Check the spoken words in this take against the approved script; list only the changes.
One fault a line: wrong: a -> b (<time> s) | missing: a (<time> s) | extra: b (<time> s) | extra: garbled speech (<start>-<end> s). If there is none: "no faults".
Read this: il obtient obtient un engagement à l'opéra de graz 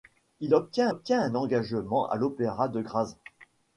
no faults